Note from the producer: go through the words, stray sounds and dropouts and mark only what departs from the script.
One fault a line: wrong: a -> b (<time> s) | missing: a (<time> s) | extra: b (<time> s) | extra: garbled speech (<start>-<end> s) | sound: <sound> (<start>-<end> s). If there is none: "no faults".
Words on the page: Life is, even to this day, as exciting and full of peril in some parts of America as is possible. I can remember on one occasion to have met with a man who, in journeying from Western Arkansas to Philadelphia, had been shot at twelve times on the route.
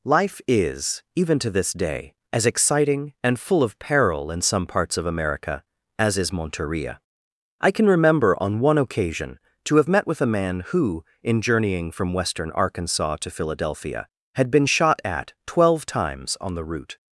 wrong: possible -> monteria (6.3 s)